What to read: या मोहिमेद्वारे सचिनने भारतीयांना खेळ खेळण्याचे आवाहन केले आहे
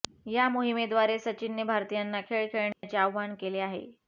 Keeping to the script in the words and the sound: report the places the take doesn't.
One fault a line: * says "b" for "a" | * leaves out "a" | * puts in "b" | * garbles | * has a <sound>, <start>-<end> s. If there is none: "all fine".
* has a dropout, 2.7-2.8 s